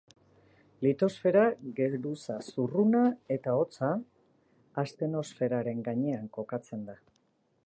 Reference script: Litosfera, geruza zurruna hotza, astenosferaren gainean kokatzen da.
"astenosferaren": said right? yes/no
yes